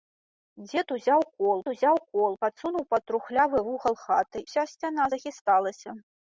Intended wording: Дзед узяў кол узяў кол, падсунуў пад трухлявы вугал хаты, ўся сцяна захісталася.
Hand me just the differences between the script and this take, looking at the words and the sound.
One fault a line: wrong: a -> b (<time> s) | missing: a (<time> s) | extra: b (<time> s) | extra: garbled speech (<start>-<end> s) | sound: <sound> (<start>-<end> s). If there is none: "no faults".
no faults